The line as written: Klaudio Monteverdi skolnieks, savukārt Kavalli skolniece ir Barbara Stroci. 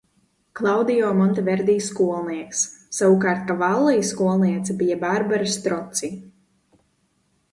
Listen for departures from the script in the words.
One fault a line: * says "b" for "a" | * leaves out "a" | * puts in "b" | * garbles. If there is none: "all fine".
* says "bija" for "ir"